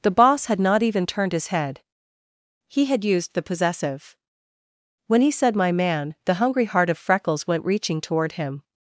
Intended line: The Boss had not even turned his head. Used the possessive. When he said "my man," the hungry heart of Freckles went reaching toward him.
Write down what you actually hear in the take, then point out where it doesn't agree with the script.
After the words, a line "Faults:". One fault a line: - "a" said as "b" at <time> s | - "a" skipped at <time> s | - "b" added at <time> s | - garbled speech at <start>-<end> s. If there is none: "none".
The Boss had not even turned his head. He had used the possessive. When he said "my man," the hungry heart of Freckles went reaching toward him.
Faults:
- "He had" added at 2.7 s